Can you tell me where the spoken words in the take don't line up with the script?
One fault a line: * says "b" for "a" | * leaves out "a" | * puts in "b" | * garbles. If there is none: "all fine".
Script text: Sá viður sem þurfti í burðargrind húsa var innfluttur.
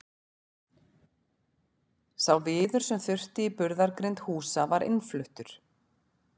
all fine